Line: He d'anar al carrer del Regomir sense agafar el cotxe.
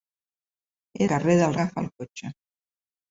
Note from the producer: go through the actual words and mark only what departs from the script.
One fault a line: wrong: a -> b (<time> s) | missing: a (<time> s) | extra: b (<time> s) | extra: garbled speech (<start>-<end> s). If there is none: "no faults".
missing: d'anar al (1.1 s)
missing: Regomir sense (1.5 s)